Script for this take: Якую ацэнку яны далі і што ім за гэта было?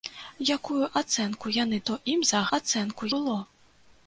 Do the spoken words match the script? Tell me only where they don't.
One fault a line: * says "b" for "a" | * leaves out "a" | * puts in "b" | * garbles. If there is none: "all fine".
* leaves out "далі і"
* says "ацэнку" for "гэта"